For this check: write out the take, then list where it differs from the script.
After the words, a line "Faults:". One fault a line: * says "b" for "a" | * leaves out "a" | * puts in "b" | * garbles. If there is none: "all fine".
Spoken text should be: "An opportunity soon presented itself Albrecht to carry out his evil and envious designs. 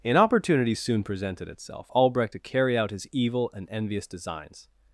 "An opportunity soon presented itself Albrecht to carry out his evil and envious designs.
Faults:
all fine